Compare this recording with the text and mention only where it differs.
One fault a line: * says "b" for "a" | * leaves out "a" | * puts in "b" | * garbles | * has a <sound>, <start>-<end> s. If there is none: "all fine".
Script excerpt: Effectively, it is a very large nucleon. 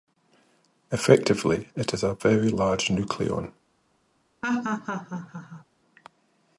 * has a laugh, 4.4-5.6 s